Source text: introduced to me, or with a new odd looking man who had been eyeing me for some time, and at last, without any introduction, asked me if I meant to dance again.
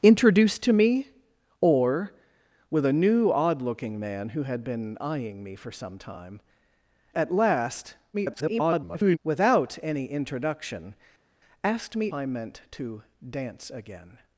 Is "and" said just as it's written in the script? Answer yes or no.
no